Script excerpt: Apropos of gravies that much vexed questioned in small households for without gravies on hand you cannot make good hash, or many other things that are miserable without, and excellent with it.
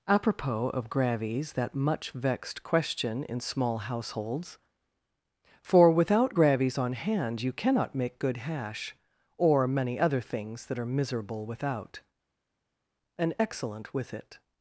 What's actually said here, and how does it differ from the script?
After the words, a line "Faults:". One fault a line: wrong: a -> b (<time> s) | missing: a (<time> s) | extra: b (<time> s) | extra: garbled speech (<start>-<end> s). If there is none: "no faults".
Apropos of gravies that much vexed question in small households for without gravies on hand you cannot make good hash, or many other things that are miserable without, and excellent with it.
Faults:
wrong: questioned -> question (2.6 s)